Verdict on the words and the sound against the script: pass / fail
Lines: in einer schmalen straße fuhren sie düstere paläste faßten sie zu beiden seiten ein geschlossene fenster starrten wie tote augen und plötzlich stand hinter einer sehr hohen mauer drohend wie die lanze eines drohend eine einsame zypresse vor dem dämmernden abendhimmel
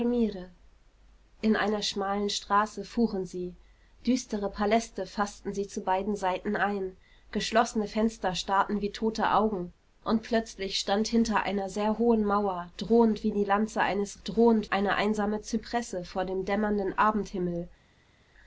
pass